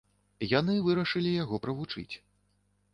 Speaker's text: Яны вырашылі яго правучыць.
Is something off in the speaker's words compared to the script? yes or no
no